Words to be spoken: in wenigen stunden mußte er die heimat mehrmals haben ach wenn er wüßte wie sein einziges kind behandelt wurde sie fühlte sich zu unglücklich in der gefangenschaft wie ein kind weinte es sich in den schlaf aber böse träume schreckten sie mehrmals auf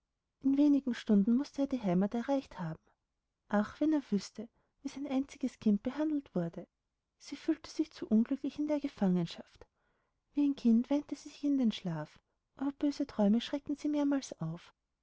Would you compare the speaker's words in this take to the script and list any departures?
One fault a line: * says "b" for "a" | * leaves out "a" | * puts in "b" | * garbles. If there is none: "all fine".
* says "erreicht" for "mehrmals"
* says "sie" for "es"